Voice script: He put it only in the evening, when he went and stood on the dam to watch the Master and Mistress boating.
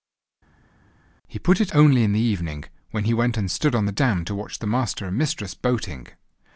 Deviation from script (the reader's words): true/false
false